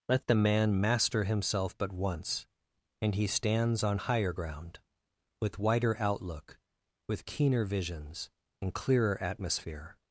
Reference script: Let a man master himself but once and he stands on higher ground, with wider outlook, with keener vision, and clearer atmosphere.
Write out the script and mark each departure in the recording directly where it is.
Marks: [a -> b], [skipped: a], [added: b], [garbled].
Let [a -> the] man master himself but once and he stands on higher ground, with wider outlook, with keener [vision, -> visions] and clearer atmosphere.